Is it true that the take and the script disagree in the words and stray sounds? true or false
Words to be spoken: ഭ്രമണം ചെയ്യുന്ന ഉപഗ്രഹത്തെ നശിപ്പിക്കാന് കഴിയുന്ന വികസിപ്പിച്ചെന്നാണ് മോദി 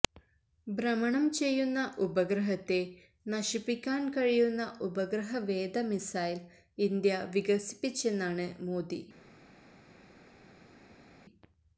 true